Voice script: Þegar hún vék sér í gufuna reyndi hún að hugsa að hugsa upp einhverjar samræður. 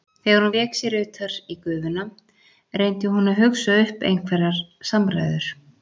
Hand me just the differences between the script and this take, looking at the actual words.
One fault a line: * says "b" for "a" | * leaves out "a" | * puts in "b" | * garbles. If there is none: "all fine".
* puts in "utar"
* leaves out "að hugsa"